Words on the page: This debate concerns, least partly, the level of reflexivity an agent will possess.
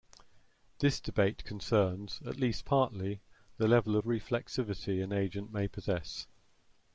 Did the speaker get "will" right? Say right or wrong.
wrong